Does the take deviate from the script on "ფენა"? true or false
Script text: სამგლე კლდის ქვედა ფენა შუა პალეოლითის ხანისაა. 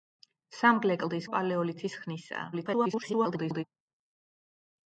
true